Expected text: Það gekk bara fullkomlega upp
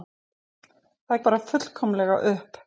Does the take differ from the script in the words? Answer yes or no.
yes